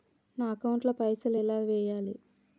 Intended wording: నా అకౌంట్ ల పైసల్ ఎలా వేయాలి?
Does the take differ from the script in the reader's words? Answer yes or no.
no